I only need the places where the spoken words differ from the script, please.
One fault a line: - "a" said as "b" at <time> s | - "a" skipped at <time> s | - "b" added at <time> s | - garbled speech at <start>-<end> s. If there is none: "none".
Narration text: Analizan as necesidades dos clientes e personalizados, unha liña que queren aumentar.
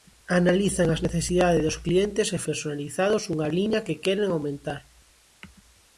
none